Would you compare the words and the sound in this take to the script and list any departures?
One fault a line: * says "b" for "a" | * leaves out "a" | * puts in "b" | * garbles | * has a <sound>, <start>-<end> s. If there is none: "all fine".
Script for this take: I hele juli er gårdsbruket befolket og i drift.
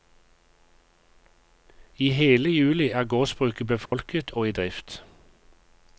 * has a dropout, 3.9-3.9 s